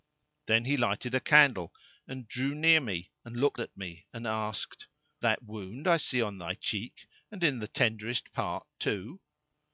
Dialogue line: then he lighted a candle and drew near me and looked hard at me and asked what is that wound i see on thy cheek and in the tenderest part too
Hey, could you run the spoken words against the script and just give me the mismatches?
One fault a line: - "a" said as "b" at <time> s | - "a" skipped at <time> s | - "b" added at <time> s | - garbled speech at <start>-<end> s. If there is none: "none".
- "hard" skipped at 3.6 s
- "what is" skipped at 4.9 s